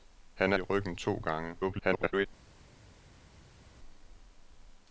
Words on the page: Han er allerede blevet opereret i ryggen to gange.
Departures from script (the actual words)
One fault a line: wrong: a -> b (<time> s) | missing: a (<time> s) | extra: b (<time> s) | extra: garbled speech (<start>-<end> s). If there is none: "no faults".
missing: allerede blevet opereret (0.6 s)
extra: garbled speech (1.6-2.3 s)